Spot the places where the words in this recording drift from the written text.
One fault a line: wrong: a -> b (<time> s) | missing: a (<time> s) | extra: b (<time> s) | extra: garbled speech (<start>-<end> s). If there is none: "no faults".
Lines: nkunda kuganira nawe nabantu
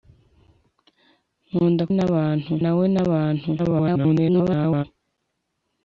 wrong: kuganira -> nabantu (2.0 s)
extra: garbled speech (3.6-4.8 s)